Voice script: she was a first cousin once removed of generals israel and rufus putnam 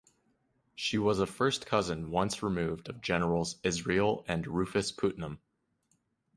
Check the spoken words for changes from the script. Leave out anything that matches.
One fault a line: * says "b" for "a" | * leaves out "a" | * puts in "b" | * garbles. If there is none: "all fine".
all fine